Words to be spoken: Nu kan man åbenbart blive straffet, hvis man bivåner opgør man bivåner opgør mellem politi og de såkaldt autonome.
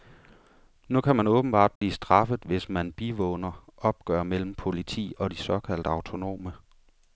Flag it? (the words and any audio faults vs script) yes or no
yes